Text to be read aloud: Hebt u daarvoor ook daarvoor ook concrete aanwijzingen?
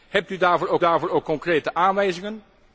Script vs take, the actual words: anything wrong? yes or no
no